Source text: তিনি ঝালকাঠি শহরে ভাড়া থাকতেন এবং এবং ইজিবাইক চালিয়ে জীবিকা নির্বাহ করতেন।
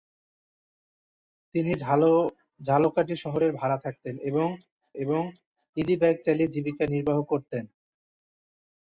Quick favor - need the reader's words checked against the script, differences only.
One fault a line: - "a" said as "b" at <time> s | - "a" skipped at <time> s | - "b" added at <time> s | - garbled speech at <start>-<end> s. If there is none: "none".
none